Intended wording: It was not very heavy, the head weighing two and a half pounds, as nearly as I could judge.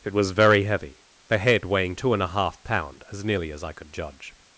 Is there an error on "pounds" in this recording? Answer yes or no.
yes